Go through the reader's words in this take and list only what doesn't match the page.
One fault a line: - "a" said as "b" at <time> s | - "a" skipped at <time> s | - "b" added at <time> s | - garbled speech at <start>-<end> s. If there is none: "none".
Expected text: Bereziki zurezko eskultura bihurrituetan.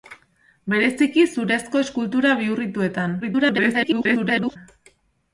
- garbled speech at 3.2-4.6 s